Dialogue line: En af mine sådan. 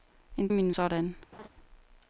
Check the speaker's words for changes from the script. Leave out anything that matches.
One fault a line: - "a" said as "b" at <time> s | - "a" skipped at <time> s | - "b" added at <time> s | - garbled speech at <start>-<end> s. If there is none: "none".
none